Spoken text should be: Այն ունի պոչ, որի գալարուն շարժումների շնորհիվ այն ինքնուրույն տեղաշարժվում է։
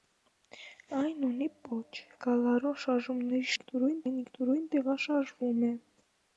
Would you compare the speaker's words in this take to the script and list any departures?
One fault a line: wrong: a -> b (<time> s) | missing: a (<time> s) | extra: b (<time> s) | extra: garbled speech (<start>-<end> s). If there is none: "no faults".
missing: որի (2.0 s)
wrong: շնորհիվ -> ինքնուրույն (3.6 s)